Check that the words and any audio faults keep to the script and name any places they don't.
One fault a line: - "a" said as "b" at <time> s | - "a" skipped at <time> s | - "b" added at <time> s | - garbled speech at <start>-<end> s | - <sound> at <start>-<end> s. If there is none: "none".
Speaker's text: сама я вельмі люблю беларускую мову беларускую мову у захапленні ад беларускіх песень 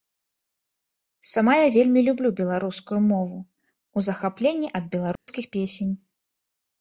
- "беларускую мову" skipped at 3.4 s
- dropout at 5.2-5.3 s